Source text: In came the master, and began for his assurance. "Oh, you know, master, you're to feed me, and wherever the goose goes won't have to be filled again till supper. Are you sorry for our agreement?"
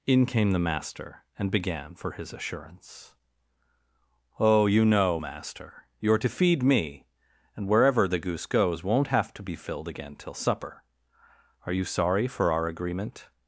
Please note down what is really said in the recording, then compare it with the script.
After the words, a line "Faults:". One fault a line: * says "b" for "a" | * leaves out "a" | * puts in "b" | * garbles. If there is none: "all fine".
In came the master, and began for his assurance. "Oh, you know, master, you're to feed me, and wherever the goose goes won't have to be filled again till supper. Are you sorry for our agreement?"
Faults:
all fine